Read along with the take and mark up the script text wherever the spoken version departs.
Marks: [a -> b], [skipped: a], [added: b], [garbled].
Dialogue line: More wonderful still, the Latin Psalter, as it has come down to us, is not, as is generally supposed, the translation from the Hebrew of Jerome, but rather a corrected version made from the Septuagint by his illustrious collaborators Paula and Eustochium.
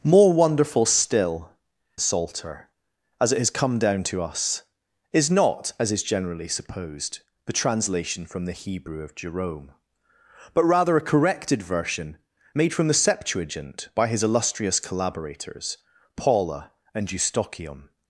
More wonderful still, [skipped: the Latin] Psalter, as it has come down to us, is not, as is generally supposed, the translation from the Hebrew of Jerome, but rather a corrected version made from the Septuagint by his illustrious collaborators Paula and Eustochium.